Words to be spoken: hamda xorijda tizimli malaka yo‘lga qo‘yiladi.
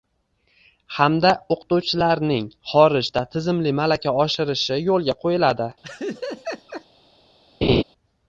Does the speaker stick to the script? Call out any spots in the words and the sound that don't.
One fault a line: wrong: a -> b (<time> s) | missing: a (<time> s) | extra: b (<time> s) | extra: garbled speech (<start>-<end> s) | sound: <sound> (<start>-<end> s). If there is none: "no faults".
extra: o‘qituvchilarning (1.5 s)
extra: oshirishi (4.3 s)
sound: laugh (5.8-6.8 s)
sound: laugh (7.6-7.8 s)